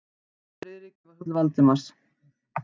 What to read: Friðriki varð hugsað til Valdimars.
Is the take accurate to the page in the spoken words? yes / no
no